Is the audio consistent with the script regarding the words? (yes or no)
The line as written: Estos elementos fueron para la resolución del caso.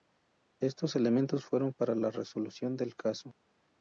yes